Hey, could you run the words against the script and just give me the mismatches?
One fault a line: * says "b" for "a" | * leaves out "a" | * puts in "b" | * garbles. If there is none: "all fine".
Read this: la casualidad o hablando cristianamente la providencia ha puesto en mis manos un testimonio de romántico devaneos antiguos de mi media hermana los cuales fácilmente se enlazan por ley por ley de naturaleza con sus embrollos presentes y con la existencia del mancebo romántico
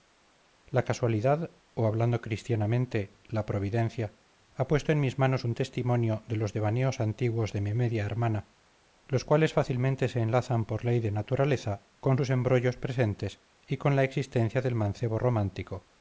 * says "los" for "romántico"
* leaves out "por ley"